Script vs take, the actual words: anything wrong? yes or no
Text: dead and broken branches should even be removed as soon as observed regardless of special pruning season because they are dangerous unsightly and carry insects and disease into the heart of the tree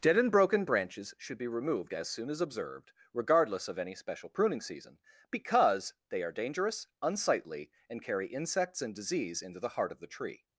yes